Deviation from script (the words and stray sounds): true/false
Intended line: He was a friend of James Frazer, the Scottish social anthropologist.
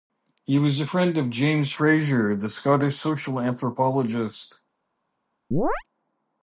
true